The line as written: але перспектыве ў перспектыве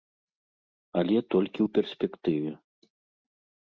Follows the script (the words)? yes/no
no